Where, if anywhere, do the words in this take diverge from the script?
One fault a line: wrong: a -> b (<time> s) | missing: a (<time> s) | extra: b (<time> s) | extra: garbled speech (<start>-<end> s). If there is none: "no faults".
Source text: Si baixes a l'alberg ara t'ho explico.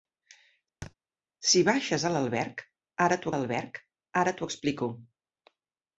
extra: l'alberg ara t'ho (3.3 s)